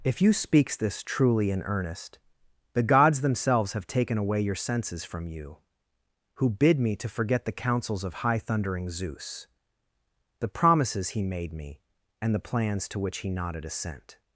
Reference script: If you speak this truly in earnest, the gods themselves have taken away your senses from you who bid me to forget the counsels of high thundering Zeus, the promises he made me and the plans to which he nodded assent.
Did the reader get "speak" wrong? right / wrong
wrong